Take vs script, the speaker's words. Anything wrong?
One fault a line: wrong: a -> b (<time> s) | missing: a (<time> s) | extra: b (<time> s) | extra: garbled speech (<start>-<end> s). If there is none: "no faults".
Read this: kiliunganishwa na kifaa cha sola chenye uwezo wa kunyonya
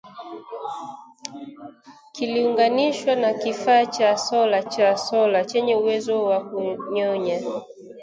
extra: cha sola (4.6 s)